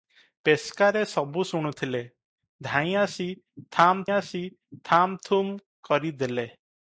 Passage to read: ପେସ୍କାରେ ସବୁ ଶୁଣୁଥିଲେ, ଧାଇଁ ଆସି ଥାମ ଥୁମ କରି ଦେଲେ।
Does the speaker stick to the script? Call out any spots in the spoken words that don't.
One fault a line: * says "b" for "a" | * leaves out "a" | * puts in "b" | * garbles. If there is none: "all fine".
* puts in "ଆସି ଥାମ"